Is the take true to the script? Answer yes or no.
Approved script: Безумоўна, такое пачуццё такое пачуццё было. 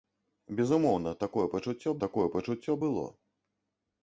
yes